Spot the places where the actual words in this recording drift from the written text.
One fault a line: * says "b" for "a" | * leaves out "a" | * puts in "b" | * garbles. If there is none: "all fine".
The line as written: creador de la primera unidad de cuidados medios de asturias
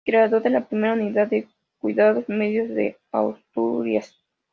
all fine